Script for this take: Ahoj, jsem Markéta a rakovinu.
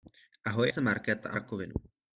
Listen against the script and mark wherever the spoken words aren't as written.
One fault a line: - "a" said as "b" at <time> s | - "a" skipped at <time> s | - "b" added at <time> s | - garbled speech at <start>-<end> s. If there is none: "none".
none